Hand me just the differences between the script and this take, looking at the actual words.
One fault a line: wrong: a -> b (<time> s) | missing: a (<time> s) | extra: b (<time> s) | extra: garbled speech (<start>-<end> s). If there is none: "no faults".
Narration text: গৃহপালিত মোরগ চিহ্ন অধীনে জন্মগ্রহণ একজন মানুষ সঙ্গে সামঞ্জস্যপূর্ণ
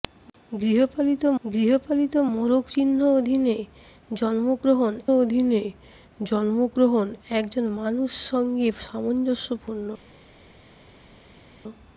extra: গৃহপালিত (1.4 s)
extra: অধীনে জন্মগ্রহণ (5.2 s)